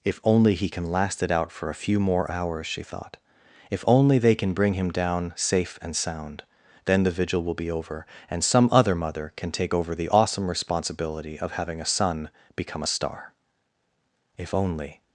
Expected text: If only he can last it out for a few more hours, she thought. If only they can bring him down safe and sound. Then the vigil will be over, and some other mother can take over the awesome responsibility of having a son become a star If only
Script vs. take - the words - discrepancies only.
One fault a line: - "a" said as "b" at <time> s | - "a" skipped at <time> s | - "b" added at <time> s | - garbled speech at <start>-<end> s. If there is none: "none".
none